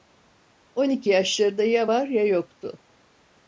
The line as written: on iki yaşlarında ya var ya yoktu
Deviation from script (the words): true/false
false